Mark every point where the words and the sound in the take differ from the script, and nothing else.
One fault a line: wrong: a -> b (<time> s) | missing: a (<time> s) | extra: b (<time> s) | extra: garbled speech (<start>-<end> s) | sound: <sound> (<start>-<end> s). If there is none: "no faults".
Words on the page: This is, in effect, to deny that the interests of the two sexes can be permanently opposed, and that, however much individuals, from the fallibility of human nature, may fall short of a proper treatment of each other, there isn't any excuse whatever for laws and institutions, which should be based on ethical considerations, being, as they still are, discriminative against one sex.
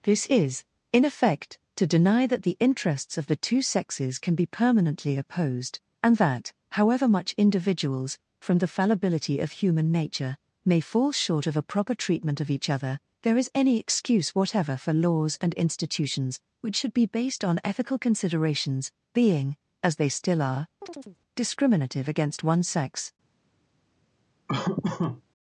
wrong: isn't -> is (13.4 s)
sound: chirp (20.8-21.2 s)
sound: laugh (24.5-25.2 s)